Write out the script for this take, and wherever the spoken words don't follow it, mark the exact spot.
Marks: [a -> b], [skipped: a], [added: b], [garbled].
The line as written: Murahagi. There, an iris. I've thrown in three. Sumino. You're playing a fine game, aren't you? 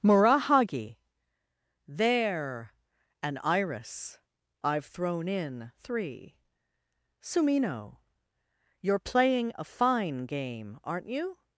Murahagi. There, an iris. I've thrown in three. Sumino. You're playing a fine game, aren't you?